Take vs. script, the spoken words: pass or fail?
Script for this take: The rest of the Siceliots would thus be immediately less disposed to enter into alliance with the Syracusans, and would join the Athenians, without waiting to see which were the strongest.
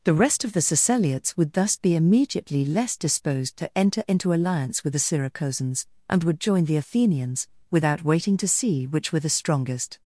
pass